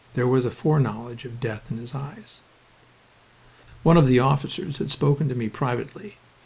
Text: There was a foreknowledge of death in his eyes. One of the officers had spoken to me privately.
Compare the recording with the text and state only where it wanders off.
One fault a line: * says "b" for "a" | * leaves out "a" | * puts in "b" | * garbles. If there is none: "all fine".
all fine